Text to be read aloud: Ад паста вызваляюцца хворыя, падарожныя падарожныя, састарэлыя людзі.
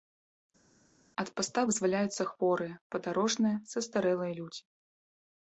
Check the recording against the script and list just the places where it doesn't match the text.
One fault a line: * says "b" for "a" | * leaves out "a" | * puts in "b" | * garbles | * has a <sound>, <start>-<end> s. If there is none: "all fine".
* leaves out "падарожныя"